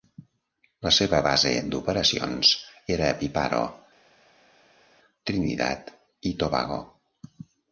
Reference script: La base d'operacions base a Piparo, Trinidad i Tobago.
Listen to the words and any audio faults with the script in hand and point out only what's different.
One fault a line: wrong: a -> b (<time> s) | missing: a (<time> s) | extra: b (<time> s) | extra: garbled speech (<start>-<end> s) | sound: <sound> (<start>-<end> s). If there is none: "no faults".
extra: seva (1.0 s)
wrong: base -> era (3.0 s)